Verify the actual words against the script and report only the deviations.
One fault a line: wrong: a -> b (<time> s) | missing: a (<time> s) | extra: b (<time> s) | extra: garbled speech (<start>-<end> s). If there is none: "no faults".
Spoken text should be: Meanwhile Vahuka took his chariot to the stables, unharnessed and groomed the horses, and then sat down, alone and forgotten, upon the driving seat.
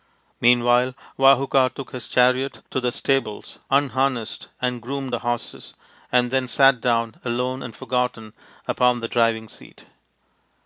no faults